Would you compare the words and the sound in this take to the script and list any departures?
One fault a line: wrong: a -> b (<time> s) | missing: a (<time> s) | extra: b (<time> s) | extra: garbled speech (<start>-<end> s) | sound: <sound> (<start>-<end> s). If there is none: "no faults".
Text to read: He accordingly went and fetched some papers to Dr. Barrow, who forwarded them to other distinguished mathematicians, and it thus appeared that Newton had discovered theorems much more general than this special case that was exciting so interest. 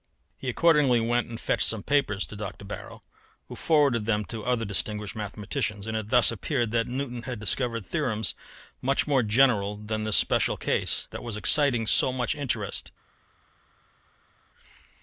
extra: much (12.1 s)